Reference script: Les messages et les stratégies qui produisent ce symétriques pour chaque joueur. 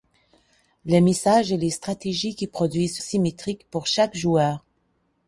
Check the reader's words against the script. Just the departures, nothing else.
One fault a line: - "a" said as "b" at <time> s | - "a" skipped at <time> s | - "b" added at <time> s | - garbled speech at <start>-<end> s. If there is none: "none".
none